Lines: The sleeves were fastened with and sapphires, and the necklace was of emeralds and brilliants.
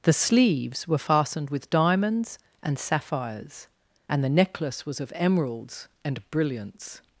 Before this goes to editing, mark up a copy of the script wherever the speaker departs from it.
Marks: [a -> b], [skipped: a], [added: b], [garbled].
The sleeves were fastened with [added: diamonds] and sapphires, and the necklace was of emeralds and brilliants.